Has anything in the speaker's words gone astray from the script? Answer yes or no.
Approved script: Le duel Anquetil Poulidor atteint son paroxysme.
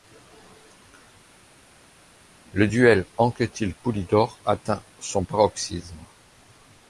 no